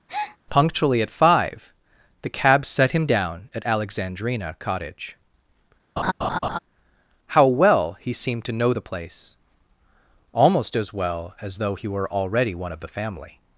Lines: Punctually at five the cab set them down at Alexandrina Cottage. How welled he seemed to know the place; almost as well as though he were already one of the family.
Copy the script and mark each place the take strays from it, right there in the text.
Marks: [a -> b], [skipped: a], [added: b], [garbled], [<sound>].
[breath] Punctually at five the cab set [them -> him] down at Alexandrina Cottage. [laugh] How [welled -> well] he seemed to know the place; almost as well as though he were already one of the family.